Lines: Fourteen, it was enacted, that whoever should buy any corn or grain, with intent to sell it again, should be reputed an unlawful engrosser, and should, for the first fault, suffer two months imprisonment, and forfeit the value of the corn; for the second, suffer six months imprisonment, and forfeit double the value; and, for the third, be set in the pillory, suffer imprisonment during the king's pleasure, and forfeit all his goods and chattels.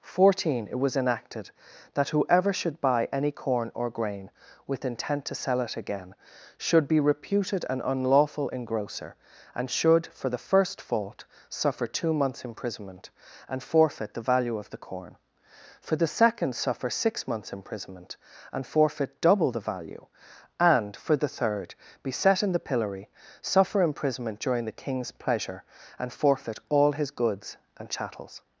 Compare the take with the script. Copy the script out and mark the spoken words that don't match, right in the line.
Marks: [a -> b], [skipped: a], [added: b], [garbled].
Fourteen, it was enacted, that whoever should buy any corn or grain, with intent to sell it again, should be reputed an unlawful engrosser, and should, for the first fault, suffer two months imprisonment, and forfeit the value of the corn; for the second, suffer six months imprisonment, and forfeit double the value; and, for the third, be set in the pillory, suffer imprisonment during the king's pleasure, and forfeit all his goods and chattels.